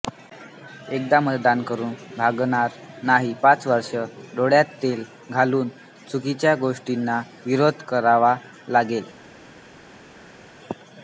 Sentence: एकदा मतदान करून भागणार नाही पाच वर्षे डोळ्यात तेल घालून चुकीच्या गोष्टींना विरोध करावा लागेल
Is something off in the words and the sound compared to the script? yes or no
no